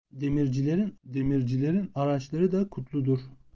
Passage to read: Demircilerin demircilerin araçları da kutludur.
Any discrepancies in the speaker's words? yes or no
no